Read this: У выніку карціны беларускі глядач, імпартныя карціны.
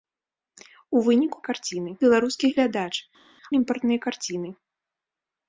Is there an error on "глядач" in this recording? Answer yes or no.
no